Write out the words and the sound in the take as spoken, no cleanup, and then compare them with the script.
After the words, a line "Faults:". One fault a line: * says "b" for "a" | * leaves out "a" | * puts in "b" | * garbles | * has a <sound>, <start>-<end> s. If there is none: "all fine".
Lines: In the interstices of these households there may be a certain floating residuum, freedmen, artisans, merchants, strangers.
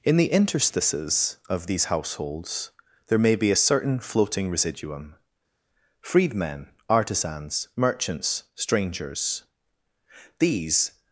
In the interstices of these households there may be a certain floating residuum, freedmen, artisans, merchants, strangers. These
Faults:
* puts in "These"